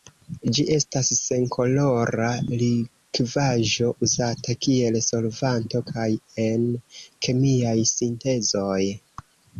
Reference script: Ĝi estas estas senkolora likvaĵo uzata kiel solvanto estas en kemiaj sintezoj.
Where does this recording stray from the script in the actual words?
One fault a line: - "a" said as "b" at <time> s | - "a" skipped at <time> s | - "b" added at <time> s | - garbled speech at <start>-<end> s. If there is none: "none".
- "estas" skipped at 1.1 s
- "estas" said as "kaj" at 5.9 s